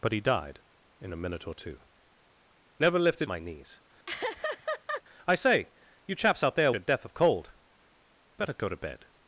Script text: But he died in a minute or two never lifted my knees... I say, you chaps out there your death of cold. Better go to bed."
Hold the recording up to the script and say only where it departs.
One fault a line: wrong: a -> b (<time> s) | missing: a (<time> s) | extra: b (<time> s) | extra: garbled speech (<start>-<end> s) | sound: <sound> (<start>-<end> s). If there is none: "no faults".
sound: laugh (4.1-5.0 s)